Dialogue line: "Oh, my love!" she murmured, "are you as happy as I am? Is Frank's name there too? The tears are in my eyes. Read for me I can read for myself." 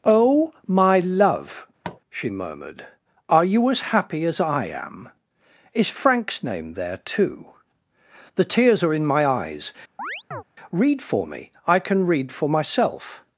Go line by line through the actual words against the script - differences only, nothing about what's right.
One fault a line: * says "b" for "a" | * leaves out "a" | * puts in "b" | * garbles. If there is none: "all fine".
all fine